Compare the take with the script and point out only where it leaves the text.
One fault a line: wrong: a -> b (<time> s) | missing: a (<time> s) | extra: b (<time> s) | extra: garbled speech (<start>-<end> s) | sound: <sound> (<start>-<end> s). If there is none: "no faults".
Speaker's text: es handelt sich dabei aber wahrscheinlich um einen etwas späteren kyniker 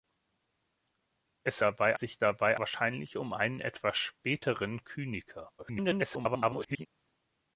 wrong: handelt -> dabei (1.6 s)
missing: aber (2.6 s)
extra: garbled speech (5.6-6.9 s)